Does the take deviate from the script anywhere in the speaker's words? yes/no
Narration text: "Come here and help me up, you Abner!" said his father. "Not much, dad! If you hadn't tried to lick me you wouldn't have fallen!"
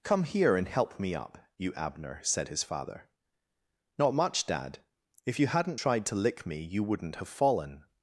no